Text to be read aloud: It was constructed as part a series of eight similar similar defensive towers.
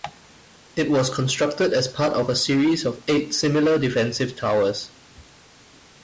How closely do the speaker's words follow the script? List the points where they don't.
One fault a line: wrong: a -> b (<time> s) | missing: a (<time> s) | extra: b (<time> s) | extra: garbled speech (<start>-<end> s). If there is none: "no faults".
extra: of (2.1 s)
missing: similar (3.8 s)